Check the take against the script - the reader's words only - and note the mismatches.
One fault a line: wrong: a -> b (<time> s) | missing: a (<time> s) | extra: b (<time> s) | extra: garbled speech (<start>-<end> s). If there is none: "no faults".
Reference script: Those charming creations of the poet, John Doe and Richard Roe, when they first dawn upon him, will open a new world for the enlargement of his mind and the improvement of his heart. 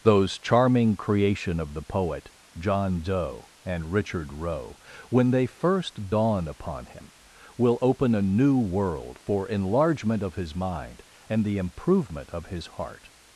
wrong: creations -> creation (1.0 s)
missing: the (9.5 s)